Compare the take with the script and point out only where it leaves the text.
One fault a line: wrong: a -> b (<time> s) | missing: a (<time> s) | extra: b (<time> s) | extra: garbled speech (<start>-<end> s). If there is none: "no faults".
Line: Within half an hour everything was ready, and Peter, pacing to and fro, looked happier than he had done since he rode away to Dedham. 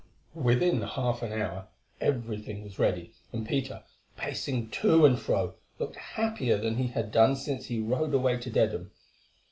no faults